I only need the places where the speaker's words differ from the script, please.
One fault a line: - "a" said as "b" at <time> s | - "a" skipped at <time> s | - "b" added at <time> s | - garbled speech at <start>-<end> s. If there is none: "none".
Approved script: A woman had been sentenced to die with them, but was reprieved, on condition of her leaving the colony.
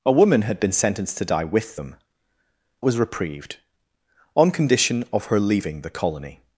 - "but" skipped at 2.0 s